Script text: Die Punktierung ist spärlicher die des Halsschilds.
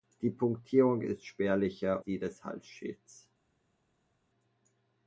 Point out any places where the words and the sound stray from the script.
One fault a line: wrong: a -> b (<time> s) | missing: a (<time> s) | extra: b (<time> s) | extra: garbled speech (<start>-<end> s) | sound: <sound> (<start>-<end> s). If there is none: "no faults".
no faults